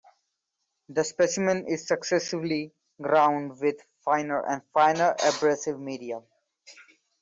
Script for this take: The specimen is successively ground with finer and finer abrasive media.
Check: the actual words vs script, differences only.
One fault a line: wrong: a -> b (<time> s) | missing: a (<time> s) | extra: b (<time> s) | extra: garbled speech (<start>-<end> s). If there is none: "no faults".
no faults